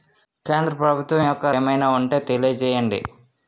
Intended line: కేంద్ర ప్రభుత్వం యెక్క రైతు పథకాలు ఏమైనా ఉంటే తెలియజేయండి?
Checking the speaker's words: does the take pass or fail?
fail